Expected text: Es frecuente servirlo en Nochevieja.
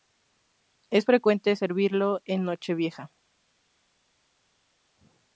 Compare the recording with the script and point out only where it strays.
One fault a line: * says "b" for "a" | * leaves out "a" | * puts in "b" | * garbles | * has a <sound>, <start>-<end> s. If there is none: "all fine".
all fine